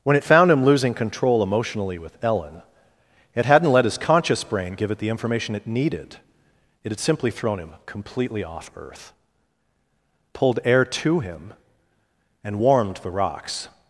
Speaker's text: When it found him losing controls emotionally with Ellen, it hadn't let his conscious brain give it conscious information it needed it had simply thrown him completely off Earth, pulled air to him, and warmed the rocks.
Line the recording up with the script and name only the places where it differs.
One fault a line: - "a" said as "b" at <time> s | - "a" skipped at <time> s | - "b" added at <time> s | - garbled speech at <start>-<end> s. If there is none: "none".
- "controls" said as "control" at 0.9 s
- "conscious" said as "the" at 5.0 s